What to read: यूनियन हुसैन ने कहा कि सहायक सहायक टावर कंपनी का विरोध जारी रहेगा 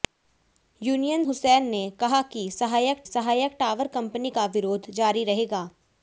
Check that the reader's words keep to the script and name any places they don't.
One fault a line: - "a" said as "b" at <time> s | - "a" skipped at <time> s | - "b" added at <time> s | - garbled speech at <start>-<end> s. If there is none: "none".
none